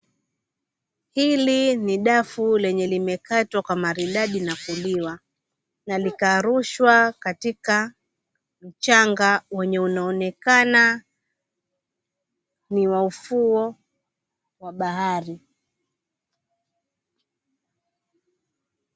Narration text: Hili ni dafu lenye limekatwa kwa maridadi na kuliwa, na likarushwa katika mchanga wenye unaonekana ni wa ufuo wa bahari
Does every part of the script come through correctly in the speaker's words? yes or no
yes